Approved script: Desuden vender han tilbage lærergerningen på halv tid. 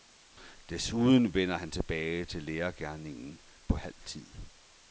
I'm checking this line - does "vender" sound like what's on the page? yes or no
yes